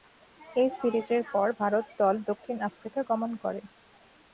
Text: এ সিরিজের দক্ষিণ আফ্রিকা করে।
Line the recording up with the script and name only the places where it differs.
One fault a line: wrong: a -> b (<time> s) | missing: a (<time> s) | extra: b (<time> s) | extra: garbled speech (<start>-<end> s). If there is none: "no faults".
extra: পর ভারত দল (1.3 s)
extra: গমন (3.1 s)